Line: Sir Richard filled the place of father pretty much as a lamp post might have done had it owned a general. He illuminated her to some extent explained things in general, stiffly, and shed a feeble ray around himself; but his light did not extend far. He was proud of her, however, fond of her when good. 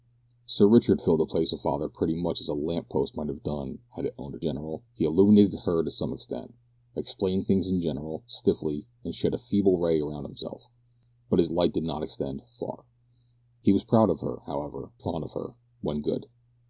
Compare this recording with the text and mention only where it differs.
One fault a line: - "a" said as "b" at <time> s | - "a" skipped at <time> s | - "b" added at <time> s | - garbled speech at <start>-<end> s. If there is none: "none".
none